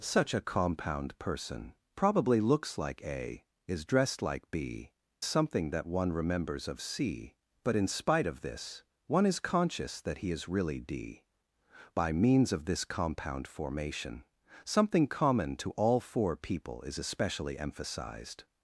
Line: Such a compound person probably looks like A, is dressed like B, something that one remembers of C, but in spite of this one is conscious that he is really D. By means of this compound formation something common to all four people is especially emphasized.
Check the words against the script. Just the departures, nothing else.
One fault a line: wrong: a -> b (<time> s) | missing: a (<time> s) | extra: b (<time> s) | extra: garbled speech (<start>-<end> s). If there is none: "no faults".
no faults